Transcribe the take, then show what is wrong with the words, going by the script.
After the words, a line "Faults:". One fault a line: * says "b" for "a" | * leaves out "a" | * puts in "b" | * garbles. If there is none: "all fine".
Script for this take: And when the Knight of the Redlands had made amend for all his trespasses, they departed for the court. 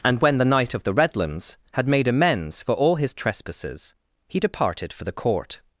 And when the Knight of the Redlands had made amends for all his trespasses, he departed for the court.
Faults:
* says "amends" for "amend"
* says "he" for "they"